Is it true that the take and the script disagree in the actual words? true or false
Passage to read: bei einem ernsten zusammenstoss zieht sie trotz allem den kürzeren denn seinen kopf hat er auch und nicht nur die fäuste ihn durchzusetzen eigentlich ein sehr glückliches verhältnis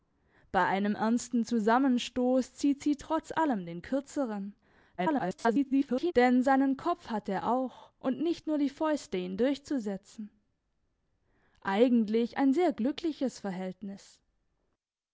true